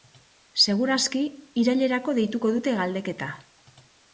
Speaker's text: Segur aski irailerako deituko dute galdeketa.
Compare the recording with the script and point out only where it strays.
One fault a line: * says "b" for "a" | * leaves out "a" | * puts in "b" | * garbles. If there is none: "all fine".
all fine